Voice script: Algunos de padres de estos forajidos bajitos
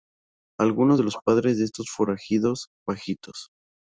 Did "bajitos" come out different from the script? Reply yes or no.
no